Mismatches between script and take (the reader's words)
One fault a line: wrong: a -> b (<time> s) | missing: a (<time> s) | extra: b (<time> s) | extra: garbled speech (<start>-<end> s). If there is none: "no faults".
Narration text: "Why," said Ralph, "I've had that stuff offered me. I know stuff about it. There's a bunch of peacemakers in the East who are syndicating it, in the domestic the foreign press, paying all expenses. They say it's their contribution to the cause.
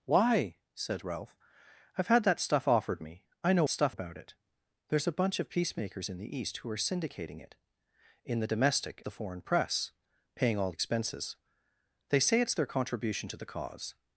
no faults